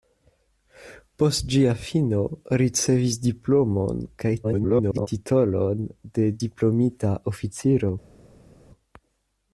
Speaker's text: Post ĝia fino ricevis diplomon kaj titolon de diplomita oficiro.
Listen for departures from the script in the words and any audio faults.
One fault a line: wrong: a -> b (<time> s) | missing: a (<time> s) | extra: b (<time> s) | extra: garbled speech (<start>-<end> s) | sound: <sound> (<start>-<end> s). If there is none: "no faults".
extra: garbled speech (4.4-5.1 s)